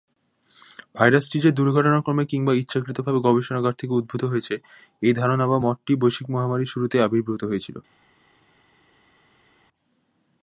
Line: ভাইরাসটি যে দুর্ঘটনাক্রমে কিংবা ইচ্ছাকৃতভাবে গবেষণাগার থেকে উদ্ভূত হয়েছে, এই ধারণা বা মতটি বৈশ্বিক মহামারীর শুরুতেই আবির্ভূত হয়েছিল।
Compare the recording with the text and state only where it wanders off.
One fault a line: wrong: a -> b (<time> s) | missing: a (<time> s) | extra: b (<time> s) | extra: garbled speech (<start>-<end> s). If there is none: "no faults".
no faults